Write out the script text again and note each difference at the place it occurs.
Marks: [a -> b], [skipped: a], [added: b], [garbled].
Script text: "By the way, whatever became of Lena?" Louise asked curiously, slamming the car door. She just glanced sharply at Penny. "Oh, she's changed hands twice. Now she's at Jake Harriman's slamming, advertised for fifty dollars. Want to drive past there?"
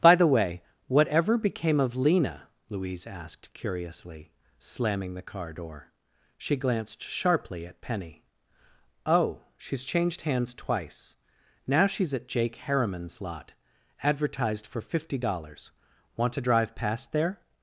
"By the way, whatever became of Lena?" Louise asked curiously, slamming the car door. She [skipped: just] glanced sharply at Penny. "Oh, she's changed hands twice. Now she's at Jake Harriman's [slamming, -> lot] advertised for fifty dollars. Want to drive past there?"